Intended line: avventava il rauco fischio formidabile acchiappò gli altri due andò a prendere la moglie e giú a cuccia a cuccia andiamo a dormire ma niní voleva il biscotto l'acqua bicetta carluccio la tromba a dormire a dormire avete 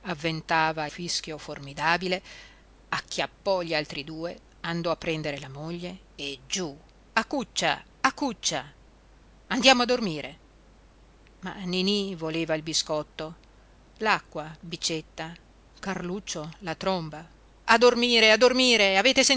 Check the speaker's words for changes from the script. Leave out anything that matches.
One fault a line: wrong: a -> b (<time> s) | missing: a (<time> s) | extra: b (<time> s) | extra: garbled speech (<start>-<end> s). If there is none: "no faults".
missing: il rauco (0.9 s)